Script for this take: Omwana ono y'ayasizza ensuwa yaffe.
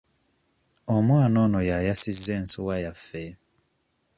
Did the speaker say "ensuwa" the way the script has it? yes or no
yes